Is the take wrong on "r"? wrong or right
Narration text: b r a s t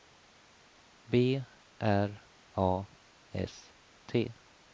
right